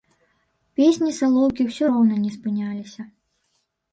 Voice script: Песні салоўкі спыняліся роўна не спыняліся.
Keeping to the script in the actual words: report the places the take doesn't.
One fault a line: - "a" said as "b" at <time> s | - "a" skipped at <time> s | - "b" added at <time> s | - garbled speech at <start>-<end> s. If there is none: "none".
- "спыняліся" said as "ўсё" at 1.7 s